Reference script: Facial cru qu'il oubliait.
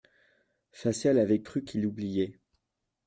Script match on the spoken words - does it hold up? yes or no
no